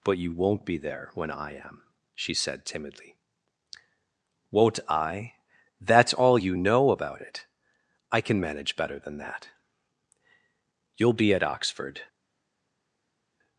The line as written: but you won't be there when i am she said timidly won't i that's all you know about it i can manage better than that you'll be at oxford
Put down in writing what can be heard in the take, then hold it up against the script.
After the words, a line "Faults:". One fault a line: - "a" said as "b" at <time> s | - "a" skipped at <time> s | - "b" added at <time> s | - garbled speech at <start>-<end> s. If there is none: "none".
but you won't be there when i am she said timidly won't i that's all you know about it i can manage better than that you'll be at oxford
Faults:
none